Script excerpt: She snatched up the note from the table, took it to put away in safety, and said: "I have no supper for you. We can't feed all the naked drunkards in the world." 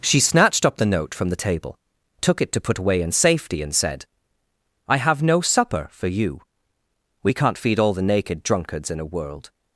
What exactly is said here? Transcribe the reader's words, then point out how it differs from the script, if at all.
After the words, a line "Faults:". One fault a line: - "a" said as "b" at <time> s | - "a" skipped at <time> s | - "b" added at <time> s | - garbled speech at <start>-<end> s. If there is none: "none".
She snatched up the note from the table, took it to put away in safety, and said: "I have no supper for you. We can't feed all the naked drunkards in a world."
Faults:
- "the" said as "a" at 9.0 s